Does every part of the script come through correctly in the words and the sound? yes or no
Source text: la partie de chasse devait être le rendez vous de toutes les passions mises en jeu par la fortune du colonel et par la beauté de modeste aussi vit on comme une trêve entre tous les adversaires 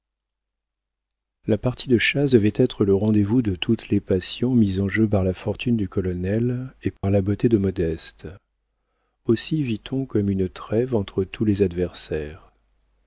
no